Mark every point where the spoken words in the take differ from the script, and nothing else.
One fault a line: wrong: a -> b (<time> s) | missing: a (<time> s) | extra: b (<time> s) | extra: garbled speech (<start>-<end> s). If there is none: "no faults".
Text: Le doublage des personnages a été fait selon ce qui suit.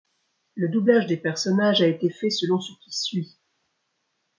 no faults